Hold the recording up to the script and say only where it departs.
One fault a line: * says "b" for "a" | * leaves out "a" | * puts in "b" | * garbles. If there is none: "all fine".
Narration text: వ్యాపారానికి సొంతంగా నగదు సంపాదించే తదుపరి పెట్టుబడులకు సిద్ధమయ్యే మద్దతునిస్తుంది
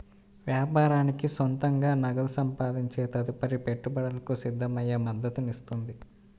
all fine